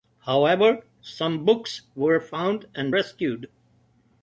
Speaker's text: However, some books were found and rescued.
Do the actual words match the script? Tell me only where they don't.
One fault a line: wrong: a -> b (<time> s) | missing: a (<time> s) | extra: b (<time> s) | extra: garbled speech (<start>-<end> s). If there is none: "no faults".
no faults